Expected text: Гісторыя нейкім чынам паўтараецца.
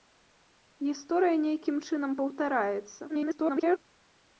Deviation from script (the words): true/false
true